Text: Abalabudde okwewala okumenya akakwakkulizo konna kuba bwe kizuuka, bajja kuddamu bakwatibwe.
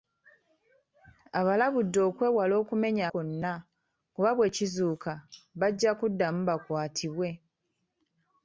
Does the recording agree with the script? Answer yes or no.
no